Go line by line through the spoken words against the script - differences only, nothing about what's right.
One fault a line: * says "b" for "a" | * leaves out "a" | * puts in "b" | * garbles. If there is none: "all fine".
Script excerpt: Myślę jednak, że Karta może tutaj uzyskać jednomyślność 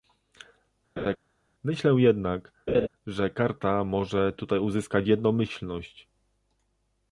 all fine